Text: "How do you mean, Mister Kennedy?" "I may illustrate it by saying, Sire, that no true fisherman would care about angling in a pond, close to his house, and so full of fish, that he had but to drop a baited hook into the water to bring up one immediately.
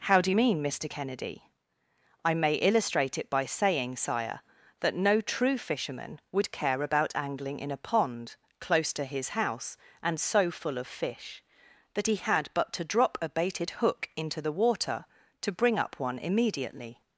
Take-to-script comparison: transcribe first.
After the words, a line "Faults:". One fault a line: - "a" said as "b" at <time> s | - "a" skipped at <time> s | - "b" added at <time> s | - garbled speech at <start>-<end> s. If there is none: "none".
"How do you mean, Mister Kennedy?" "I may illustrate it by saying, Sire, that no true fisherman would care about angling in a pond, close to his house, and so full of fish, that he had but to drop a baited hook into the water to bring up one immediately.
Faults:
none